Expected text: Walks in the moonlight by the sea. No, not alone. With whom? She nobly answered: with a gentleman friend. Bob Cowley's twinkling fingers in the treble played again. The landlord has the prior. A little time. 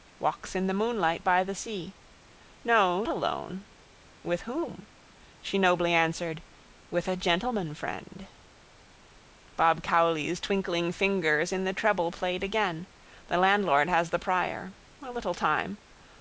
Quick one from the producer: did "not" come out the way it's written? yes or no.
no